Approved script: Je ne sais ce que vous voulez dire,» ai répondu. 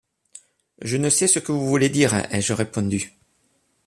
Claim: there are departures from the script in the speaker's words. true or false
true